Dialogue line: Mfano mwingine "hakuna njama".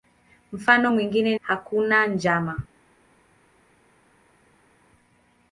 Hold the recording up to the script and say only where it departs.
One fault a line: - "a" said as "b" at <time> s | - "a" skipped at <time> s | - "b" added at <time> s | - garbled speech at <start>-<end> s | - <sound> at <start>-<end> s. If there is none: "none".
none